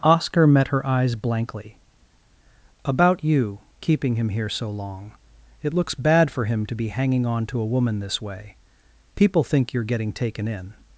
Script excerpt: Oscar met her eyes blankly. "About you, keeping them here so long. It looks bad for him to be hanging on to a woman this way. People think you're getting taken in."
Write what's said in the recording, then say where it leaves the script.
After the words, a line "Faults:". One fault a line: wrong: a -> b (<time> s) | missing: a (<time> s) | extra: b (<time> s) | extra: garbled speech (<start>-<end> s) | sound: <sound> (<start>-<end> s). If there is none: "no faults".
Oscar met her eyes blankly. "About you, keeping him here so long. It looks bad for him to be hanging on to a woman this way. People think you're getting taken in."
Faults:
wrong: them -> him (4.1 s)